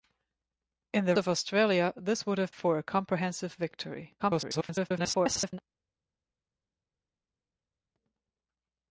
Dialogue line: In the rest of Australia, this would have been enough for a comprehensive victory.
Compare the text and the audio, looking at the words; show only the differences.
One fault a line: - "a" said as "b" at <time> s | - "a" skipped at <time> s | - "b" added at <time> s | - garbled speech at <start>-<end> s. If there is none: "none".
- "rest" skipped at 1.1 s
- "been enough" skipped at 2.5 s
- garbled speech at 4.2-5.6 s